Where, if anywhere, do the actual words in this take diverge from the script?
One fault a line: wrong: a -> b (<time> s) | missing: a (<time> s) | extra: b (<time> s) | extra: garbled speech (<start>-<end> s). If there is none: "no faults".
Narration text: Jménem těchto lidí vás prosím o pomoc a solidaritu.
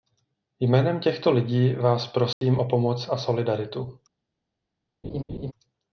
no faults